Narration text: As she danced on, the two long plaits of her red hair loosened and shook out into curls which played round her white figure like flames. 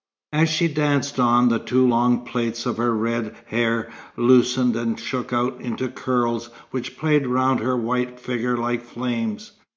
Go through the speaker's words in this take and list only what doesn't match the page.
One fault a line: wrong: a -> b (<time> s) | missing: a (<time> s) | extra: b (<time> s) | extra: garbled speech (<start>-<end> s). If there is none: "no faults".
no faults